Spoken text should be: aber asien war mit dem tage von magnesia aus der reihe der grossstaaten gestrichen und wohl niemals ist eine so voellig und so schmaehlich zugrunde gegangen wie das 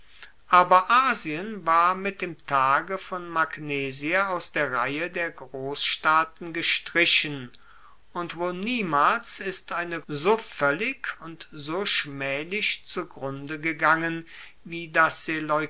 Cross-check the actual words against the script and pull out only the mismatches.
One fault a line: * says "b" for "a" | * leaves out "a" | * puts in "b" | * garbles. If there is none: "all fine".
all fine